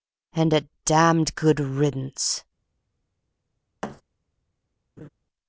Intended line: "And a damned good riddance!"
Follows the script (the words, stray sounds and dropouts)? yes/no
no